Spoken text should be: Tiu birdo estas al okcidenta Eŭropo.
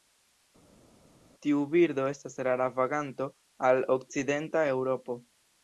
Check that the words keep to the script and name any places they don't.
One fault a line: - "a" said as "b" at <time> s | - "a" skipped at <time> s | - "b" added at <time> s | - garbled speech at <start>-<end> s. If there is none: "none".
- "rara vaganto" added at 2.5 s